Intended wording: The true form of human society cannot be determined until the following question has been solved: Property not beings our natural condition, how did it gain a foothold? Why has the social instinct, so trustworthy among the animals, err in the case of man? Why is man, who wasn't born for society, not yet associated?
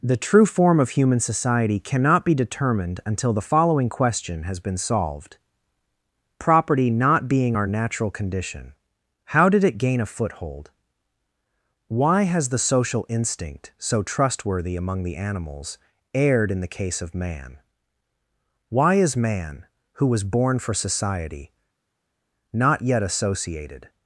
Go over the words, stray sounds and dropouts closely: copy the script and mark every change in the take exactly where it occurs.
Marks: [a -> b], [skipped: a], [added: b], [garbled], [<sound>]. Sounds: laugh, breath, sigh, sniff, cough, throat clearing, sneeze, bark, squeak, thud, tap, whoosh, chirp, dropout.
The true form of human society cannot be determined until the following question has been solved: Property not [beings -> being] our natural condition, how did it gain a foothold? Why has the social instinct, so trustworthy among the animals, [err -> erred] in the case of man? Why is man, who [wasn't -> was] born for society, not yet associated?